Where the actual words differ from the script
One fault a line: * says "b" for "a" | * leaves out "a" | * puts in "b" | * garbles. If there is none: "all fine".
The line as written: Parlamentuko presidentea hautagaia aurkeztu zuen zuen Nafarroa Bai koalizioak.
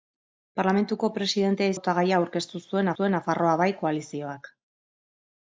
all fine